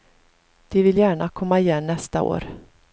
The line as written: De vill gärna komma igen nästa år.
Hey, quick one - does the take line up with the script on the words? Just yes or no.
yes